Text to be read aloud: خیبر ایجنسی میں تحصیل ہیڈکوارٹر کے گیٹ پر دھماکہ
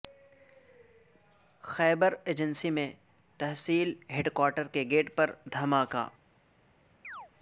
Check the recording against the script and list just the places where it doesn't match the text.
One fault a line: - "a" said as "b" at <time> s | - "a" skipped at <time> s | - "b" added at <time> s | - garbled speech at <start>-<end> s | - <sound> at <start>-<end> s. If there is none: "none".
- chirp at 7.0-7.3 s